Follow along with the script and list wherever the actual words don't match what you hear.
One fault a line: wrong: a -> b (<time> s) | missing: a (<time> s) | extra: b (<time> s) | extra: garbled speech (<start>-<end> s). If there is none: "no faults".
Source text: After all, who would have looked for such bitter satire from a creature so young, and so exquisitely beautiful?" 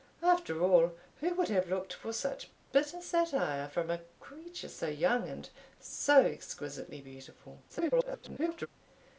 extra: garbled speech (7.7-8.7 s)